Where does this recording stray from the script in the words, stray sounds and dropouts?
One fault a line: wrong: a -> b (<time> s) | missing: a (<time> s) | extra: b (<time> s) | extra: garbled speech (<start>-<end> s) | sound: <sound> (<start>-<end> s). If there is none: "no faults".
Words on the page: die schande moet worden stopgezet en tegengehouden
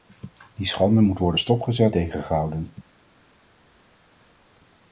missing: en (2.0 s)